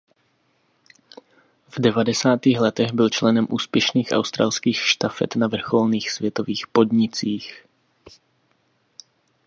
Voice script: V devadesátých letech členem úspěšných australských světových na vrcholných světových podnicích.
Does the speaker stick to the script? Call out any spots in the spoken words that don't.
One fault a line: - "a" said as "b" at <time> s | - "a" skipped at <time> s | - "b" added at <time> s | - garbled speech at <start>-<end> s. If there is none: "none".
- "byl" added at 2.9 s
- "světových" said as "štafet" at 4.8 s